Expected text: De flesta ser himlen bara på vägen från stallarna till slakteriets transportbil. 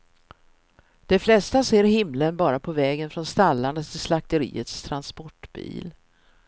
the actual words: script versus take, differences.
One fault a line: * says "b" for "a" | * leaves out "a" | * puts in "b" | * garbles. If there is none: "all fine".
all fine